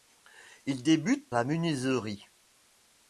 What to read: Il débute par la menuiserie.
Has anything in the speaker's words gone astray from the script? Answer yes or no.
yes